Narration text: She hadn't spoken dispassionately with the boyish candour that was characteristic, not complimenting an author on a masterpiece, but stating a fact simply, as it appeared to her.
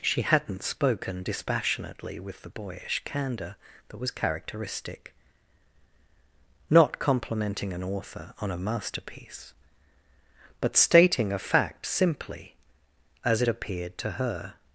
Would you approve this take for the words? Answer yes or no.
yes